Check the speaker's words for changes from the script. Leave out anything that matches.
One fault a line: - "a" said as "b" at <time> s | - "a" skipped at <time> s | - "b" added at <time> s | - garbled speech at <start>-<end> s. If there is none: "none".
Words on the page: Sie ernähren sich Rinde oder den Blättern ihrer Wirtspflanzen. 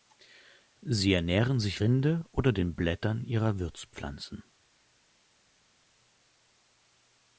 none